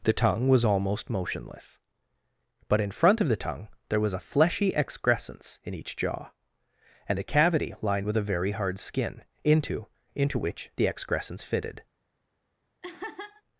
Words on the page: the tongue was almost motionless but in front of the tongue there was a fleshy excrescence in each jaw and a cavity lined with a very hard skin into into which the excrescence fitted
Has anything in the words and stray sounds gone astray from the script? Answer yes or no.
yes